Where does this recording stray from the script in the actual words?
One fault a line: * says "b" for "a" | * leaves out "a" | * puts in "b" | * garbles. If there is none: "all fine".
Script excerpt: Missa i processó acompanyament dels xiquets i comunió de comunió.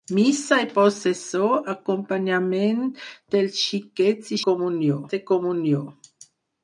all fine